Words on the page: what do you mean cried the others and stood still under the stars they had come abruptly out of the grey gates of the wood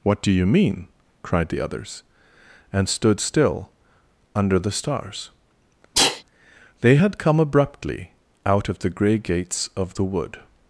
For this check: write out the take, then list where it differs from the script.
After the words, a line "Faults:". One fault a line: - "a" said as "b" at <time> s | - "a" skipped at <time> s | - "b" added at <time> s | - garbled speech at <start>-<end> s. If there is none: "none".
what do you mean cried the others and stood still under the stars they had come abruptly out of the grey gates of the wood
Faults:
none